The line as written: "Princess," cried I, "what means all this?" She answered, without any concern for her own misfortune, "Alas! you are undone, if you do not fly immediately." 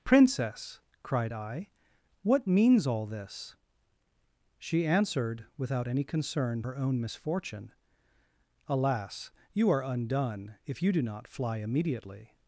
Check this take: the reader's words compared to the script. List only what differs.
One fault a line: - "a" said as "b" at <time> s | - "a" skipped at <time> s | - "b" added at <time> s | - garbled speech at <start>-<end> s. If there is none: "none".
- "for" skipped at 6.6 s